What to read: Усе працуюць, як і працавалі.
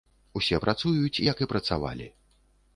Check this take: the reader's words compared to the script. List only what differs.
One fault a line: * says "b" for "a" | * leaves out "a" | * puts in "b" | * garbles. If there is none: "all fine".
all fine